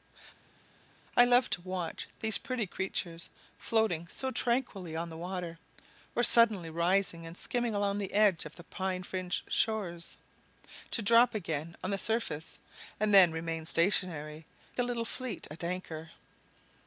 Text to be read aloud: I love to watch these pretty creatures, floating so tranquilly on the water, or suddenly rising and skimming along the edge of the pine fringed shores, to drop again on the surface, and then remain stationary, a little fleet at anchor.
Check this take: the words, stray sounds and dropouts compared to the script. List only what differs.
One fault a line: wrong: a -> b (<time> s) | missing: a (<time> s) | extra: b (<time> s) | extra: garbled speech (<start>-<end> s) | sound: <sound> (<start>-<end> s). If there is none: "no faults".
no faults